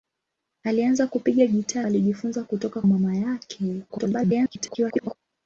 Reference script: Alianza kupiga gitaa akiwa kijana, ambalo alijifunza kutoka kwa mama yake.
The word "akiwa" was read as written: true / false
false